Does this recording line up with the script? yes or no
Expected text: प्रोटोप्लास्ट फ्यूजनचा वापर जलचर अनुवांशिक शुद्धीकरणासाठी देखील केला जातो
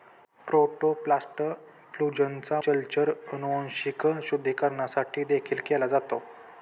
no